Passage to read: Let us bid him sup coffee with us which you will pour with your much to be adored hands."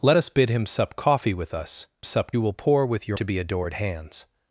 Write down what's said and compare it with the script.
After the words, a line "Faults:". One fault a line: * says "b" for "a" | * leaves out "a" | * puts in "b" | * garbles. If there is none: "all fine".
Let us bid him sup coffee with us sup you will pour with your to be adored hands."
Faults:
* says "sup" for "which"
* leaves out "much"